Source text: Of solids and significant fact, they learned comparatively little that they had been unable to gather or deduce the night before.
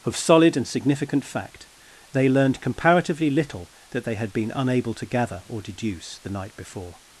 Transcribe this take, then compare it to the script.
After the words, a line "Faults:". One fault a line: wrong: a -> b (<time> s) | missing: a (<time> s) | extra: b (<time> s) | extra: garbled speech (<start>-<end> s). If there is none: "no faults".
Of solid and significant fact, they learned comparatively little that they had been unable to gather or deduce the night before.
Faults:
wrong: solids -> solid (0.2 s)